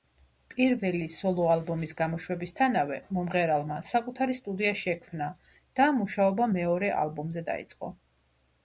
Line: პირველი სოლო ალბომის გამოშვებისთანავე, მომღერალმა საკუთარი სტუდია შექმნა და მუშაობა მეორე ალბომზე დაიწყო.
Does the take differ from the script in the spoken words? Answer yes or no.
no